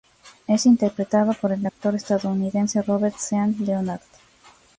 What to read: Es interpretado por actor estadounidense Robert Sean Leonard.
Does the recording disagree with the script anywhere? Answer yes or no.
yes